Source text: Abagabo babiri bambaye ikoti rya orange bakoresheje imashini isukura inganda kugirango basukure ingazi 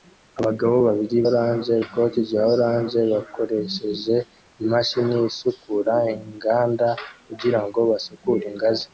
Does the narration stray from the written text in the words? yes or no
yes